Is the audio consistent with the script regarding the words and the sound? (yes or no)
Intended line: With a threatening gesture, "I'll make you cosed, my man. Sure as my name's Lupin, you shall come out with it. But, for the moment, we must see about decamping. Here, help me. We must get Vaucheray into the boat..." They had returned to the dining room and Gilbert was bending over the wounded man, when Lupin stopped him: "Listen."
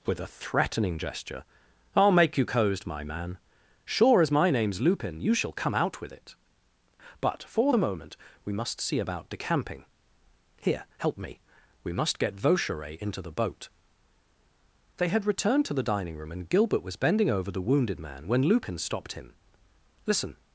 yes